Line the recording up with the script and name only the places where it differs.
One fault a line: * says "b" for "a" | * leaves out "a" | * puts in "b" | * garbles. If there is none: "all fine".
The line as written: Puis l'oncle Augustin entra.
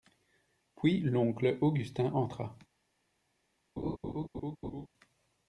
all fine